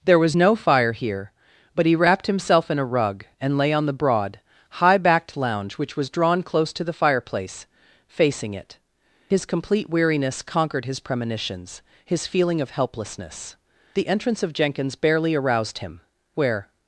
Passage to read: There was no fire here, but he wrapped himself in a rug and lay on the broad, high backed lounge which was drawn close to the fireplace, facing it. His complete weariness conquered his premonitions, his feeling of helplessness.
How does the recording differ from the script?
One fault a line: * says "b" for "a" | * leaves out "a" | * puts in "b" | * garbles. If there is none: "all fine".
* puts in "The entrance of Jenkins barely aroused him Where"